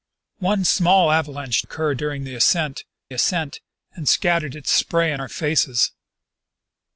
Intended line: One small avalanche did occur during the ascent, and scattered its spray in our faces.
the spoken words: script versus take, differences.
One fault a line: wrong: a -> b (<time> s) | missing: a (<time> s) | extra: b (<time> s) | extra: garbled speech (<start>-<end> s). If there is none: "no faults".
missing: did (1.6 s)
extra: ascent (3.1 s)